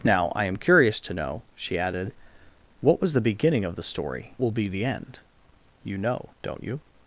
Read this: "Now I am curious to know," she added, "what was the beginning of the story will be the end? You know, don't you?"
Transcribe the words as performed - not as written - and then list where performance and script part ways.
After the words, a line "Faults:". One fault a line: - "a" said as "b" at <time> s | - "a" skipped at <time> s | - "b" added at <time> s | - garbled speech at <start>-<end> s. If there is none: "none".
"Now I am curious to know," she added, "what was the beginning of the story will be the end? You know, don't you?"
Faults:
none